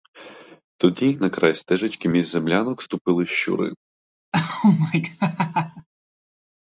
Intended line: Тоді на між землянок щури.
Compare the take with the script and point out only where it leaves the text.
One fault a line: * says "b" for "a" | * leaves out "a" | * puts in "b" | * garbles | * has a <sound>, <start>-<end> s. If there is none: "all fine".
* puts in "край стежечки"
* puts in "ступили"
* has a laugh, 4.3-5.9 s